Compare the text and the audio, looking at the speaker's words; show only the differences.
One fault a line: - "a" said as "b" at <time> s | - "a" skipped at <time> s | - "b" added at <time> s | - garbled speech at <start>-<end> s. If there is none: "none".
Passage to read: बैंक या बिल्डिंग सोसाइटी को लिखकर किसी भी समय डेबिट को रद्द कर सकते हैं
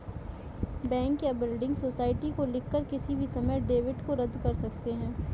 none